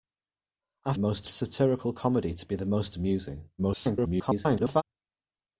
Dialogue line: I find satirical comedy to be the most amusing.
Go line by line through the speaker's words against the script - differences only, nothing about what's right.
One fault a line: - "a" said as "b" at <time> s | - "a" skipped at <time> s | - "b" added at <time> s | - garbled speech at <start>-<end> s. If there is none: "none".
- "find" said as "most" at 1.0 s
- garbled speech at 3.6-4.8 s